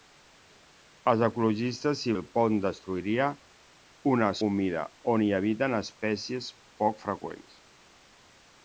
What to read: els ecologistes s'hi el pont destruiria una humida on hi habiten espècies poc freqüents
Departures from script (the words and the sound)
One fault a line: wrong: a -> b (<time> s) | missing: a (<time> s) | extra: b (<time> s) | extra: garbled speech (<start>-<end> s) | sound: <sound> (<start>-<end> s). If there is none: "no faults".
no faults